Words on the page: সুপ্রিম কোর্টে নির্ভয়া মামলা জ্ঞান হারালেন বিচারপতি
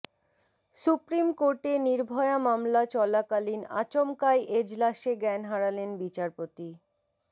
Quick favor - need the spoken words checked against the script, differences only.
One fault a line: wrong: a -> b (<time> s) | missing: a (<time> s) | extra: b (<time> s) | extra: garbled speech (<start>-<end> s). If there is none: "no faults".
extra: চলাকালীন আচমকাই এজলাসে (2.9 s)